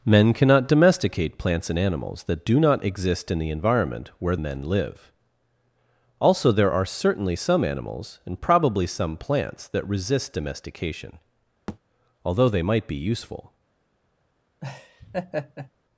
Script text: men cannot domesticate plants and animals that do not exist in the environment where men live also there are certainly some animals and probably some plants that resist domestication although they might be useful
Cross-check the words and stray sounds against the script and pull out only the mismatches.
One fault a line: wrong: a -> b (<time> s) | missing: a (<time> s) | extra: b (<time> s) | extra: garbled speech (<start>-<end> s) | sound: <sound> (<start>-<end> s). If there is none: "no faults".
sound: thud (11.7-11.8 s)
sound: laugh (14.6-15.7 s)